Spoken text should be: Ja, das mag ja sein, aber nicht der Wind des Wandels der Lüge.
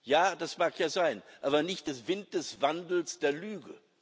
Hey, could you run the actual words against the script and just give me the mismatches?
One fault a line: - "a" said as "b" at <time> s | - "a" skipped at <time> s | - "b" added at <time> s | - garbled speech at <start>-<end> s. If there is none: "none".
none